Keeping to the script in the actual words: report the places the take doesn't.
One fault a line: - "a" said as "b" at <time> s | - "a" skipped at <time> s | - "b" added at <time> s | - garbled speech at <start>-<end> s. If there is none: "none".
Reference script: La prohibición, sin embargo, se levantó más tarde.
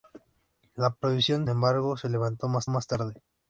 - "sin" skipped at 1.5 s
- "más" added at 2.7 s